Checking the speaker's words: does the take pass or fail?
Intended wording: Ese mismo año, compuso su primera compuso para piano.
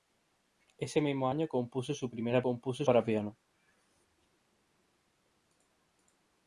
pass